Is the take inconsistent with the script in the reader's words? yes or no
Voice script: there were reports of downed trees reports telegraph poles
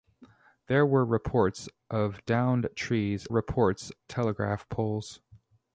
no